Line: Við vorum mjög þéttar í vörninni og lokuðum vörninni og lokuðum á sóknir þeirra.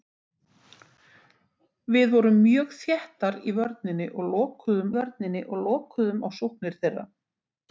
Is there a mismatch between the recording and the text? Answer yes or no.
no